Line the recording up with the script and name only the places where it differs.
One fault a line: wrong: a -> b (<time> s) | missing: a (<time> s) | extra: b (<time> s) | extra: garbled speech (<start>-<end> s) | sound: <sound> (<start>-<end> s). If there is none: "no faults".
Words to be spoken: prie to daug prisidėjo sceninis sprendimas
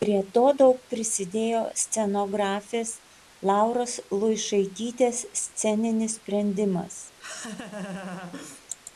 extra: scenografės lauros luišaitytės (1.8 s)
sound: laugh (7.2-8.7 s)